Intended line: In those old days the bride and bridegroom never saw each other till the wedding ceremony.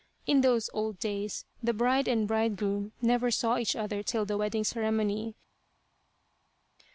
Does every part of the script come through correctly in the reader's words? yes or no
yes